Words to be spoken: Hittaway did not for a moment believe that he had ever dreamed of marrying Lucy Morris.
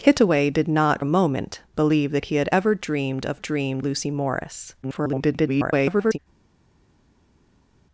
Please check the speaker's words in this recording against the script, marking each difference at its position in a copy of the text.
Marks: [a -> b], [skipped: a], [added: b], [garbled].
Hittaway did not [skipped: for] a moment believe that he had ever dreamed of [marrying -> dreamed] Lucy Morris. [garbled]